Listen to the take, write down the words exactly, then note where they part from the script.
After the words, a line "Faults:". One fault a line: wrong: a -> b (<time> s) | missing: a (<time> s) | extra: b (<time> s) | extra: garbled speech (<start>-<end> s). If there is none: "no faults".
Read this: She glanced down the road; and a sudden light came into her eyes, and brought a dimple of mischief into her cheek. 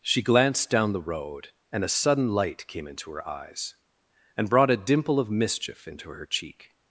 She glanced down the road; and a sudden light came into her eyes, and brought a dimple of mischief into her cheek.
Faults:
no faults